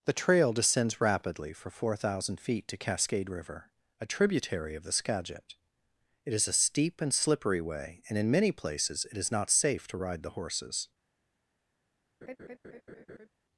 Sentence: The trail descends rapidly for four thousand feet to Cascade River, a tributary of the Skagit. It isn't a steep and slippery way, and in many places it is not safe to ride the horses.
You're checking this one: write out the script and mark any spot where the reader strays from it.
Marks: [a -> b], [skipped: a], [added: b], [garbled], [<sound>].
The trail descends rapidly for four thousand feet to Cascade River, a tributary of the Skagit. It [isn't -> is] a steep and slippery way, and in many places it is not safe to ride the horses. [laugh]